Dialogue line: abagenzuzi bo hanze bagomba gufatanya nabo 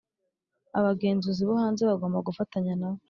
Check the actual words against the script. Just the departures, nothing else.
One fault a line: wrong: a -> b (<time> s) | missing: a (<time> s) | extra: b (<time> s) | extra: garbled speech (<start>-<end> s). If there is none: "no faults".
no faults